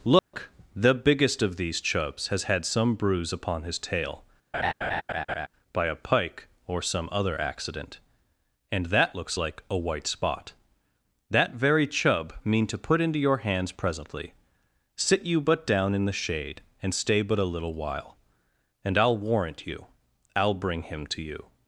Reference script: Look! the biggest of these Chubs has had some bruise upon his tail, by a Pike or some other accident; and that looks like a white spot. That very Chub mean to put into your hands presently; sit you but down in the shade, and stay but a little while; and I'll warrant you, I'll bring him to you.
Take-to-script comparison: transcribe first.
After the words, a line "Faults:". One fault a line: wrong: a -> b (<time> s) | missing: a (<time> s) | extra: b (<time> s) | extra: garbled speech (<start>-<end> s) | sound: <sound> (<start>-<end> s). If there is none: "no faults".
Look! the biggest of these Chubs has had some bruise upon his tail, by a Pike or some other accident; and that looks like a white spot. That very Chub mean to put into your hands presently; sit you but down in the shade, and stay but a little while; and I'll warrant you, I'll bring him to you.
Faults:
sound: dropout (0.2-0.3 s)
sound: laugh (4.5-5.5 s)